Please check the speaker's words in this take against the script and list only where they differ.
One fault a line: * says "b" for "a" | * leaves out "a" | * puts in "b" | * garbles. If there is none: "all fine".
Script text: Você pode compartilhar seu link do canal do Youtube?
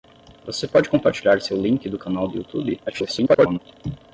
* garbles